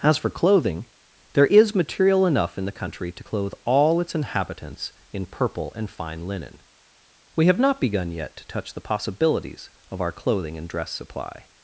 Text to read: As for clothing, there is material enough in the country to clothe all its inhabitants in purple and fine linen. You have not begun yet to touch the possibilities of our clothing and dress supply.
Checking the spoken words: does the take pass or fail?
fail